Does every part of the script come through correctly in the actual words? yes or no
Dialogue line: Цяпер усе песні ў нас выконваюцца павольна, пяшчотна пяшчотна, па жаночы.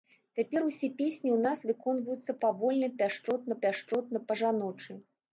yes